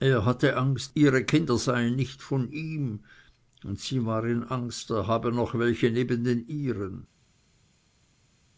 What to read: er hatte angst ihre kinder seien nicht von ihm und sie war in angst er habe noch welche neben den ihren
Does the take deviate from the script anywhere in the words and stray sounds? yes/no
no